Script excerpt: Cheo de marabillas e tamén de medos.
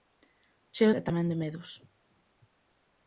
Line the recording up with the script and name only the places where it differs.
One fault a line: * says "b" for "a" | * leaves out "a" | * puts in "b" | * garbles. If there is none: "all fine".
* leaves out "de marabillas"